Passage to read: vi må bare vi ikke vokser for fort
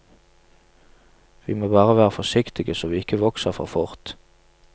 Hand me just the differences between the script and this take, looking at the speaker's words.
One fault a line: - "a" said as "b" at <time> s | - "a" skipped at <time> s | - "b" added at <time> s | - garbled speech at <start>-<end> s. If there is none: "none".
- "være forsiktige så" added at 2.0 s